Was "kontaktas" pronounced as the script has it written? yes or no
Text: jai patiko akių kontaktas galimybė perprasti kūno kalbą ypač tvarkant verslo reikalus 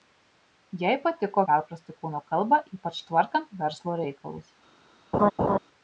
no